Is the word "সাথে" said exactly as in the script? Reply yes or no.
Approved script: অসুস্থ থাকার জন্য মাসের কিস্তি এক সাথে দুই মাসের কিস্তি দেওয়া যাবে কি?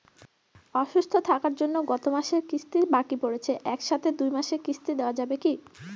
yes